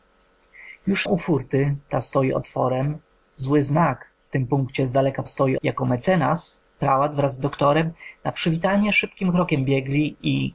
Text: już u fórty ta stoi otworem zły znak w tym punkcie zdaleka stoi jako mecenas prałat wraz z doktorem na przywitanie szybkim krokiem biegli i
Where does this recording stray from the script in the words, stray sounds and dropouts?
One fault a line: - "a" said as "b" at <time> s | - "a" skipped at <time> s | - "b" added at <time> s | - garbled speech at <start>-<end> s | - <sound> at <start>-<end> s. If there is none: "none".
none